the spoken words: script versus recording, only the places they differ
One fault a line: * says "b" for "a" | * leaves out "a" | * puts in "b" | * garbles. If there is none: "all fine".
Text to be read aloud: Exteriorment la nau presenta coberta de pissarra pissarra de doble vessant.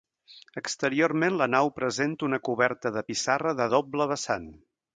* puts in "una"
* leaves out "pissarra"